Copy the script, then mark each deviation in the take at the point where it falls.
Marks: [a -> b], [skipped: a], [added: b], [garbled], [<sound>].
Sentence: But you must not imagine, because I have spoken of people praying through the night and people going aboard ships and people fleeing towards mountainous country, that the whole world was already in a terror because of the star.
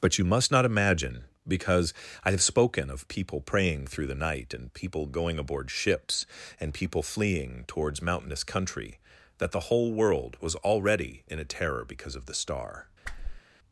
But you must not imagine, because I have spoken of people praying through the night and people going aboard ships and people fleeing towards mountainous country, that the whole world was already in a terror because of the star. [whoosh]